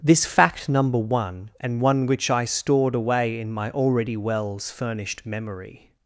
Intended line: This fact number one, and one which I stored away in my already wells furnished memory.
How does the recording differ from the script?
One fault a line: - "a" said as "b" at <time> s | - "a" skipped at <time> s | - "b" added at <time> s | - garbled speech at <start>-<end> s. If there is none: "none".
none